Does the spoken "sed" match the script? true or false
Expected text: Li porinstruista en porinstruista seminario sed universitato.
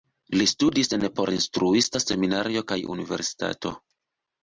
false